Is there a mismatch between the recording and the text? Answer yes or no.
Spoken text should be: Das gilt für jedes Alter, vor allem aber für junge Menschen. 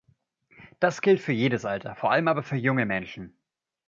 no